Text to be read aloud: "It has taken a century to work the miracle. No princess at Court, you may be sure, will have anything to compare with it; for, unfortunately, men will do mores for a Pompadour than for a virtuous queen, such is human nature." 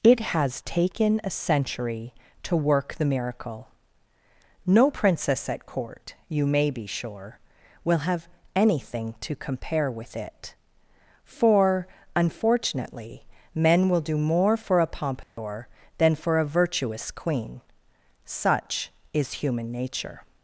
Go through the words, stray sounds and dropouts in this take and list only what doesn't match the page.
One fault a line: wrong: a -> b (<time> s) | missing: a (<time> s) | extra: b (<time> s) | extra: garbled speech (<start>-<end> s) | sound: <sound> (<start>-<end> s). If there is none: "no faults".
wrong: mores -> more (14.2 s)
sound: dropout (15.2-15.4 s)